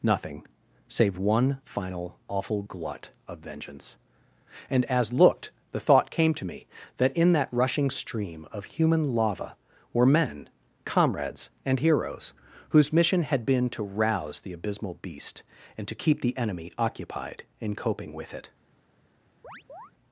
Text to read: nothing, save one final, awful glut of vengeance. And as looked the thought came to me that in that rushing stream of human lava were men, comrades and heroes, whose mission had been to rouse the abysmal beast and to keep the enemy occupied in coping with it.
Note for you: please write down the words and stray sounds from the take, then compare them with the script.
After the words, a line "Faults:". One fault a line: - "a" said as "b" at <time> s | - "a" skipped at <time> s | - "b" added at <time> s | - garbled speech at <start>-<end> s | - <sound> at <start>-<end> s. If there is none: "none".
nothing, save one final, awful glut of vengeance. And as looked the thought came to me that in that rushing stream of human lava were men, comrades and heroes, whose mission had been to rouse the abysmal beast and to keep the enemy occupied in coping with it.
Faults:
- chirp at 19.4-19.9 s